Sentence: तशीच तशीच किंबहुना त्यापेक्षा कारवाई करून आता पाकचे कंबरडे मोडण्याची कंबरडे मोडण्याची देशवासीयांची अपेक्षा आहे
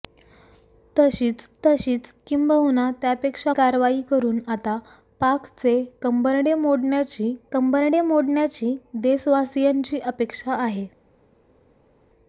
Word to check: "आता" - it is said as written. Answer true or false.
true